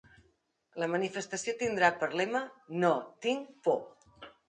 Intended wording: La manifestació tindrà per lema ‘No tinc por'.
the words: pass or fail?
pass